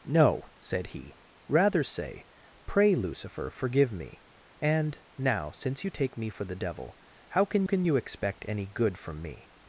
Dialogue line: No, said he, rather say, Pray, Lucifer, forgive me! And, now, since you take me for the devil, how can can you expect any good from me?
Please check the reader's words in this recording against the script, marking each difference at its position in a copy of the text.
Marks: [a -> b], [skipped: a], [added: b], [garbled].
No, said he, rather say, Pray, Lucifer, forgive me! And, now, since you take me for the devil, how can can you expect any good from me?